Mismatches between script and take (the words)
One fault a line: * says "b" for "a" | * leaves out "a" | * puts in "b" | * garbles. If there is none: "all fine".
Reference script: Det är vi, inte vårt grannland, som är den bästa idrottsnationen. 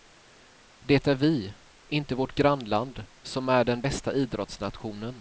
all fine